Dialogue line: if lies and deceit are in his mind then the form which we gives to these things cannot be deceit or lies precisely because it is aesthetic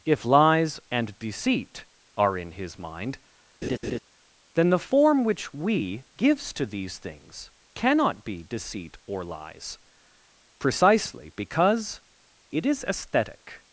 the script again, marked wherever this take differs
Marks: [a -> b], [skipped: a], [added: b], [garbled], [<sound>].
if lies and deceit are in his mind [laugh] then the form which we gives to these things cannot be deceit or lies precisely because it is aesthetic